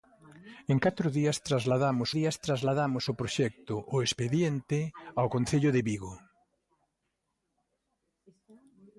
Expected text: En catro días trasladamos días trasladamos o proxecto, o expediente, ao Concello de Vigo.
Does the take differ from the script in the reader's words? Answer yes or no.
no